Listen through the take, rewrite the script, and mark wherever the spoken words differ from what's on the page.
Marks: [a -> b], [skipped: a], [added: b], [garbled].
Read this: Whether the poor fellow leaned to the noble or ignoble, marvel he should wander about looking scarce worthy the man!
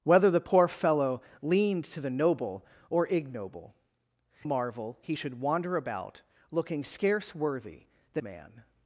Whether the poor fellow leaned to the noble or ignoble, marvel he should wander about looking scarce worthy the man!